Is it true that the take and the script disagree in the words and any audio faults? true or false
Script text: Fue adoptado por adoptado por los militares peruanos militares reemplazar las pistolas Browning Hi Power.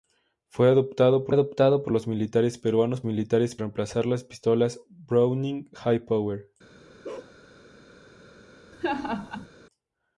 true